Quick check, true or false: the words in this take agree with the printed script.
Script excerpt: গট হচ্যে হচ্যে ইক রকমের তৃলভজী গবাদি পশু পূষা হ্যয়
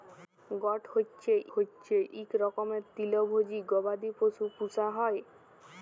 true